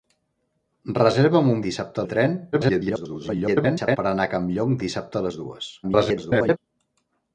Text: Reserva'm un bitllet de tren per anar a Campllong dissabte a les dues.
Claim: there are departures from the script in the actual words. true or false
true